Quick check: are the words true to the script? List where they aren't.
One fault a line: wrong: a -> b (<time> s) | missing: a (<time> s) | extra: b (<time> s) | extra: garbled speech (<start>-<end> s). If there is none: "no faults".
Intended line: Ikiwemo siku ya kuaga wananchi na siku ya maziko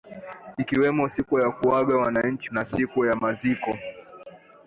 no faults